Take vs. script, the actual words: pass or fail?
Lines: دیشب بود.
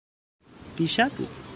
pass